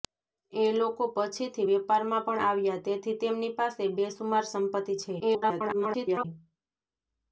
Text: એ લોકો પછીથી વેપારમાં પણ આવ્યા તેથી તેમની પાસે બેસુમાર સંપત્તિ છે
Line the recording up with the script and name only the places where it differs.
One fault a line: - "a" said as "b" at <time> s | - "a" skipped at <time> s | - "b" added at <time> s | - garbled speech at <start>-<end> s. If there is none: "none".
- garbled speech at 5.2-6.2 s